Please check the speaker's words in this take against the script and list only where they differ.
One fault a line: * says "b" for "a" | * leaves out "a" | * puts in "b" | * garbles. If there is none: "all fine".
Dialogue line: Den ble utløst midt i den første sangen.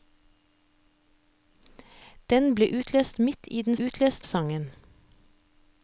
* says "utløst" for "første"